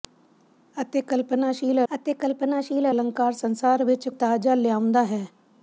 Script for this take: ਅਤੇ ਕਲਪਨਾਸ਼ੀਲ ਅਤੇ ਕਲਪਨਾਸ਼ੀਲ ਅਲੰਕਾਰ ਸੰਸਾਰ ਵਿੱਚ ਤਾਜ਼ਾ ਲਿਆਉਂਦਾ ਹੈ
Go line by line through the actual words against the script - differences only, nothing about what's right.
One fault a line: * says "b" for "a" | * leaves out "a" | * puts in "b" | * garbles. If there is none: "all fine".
all fine